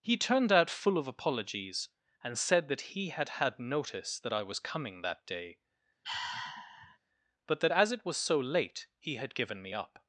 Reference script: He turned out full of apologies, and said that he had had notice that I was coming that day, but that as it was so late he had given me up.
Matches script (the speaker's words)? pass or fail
pass